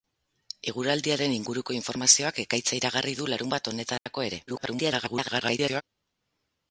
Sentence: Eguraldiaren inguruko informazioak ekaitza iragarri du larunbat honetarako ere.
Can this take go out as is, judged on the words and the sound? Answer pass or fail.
fail